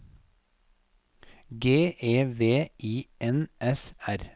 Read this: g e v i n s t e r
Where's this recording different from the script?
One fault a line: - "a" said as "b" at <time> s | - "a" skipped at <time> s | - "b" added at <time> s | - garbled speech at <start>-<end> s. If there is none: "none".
- "t e" skipped at 3.9 s